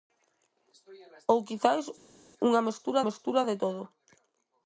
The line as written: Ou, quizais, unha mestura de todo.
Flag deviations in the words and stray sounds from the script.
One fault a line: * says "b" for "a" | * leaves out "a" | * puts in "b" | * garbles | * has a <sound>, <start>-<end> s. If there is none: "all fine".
* puts in "mestura"